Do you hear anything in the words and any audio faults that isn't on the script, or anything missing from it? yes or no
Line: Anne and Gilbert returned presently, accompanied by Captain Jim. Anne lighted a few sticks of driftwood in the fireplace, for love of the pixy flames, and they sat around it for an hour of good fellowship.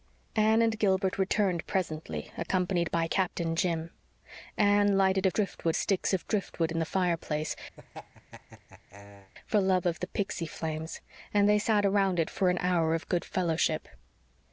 yes